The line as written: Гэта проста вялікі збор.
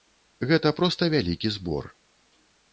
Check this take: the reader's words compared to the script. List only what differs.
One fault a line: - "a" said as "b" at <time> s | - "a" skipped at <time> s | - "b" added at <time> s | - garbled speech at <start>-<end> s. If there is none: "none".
none